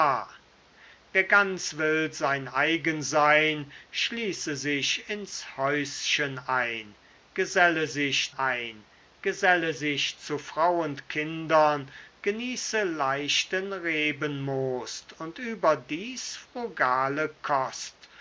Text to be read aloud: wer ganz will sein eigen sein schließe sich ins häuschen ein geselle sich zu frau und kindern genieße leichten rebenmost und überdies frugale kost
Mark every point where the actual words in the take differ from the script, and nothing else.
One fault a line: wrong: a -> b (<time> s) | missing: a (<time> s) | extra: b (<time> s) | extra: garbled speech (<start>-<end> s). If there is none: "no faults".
extra: ein geselle sich (8.3 s)